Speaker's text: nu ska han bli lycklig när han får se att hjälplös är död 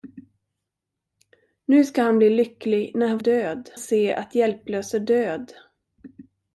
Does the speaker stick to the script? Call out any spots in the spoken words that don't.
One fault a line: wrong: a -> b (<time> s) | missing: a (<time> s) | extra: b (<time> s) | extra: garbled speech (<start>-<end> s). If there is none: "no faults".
wrong: får -> död (3.2 s)